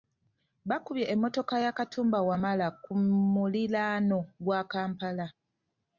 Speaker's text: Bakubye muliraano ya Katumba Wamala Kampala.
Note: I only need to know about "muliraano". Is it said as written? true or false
false